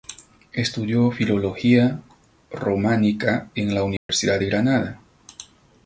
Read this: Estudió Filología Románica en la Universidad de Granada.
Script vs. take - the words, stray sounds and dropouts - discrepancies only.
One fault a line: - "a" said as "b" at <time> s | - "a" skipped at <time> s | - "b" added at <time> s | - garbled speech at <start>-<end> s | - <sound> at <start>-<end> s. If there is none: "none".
- dropout at 4.0-4.1 s